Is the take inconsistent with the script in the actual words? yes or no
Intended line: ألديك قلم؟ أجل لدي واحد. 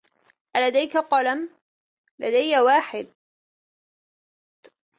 yes